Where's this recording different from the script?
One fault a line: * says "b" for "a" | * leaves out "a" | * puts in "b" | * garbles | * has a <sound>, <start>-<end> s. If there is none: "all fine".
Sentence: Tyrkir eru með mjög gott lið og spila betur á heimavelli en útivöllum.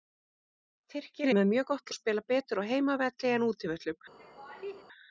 * leaves out "eru"
* leaves out "lið"
* has a laugh, 4.2-4.8 s